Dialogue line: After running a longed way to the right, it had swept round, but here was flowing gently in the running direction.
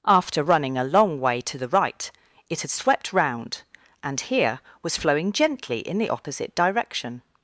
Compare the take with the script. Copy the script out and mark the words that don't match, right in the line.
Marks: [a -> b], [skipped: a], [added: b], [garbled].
After running a [longed -> long] way to the right, it had swept round, [but -> and] here was flowing gently in the [running -> opposite] direction.